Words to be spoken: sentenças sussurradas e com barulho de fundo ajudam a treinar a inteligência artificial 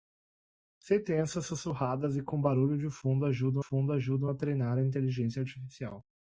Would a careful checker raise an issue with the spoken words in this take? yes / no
yes